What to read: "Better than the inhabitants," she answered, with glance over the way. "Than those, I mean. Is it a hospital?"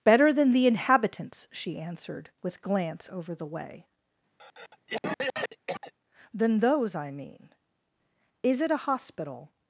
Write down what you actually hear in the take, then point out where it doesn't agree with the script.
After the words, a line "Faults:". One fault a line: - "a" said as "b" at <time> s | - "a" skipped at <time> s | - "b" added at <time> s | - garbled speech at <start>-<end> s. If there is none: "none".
"Better than the inhabitants," she answered, with glance over the way. "Than those, I mean. Is it a hospital?"
Faults:
none